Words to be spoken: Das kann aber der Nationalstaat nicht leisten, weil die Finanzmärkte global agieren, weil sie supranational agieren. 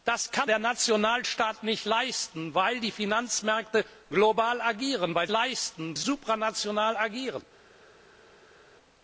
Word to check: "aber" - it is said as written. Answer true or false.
false